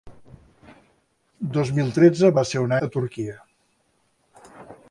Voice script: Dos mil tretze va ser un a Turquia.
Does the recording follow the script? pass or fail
pass